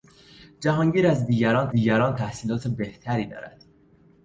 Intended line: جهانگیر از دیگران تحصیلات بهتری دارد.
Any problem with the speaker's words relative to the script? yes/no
yes